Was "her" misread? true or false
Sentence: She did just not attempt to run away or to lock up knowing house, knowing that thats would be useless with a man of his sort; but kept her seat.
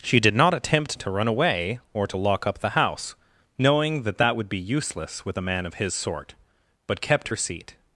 false